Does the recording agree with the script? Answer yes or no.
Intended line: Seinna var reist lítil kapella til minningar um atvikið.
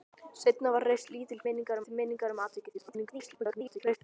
no